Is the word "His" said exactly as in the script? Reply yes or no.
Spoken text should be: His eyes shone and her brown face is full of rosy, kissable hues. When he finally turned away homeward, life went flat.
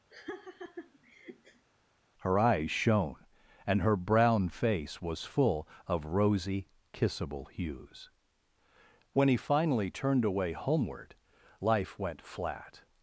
no